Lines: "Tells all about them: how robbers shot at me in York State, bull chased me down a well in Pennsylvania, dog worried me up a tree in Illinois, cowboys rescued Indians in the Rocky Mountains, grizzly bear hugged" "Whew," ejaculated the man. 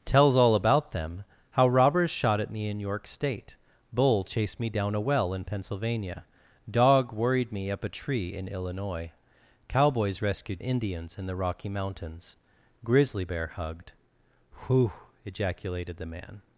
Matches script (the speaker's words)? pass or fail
pass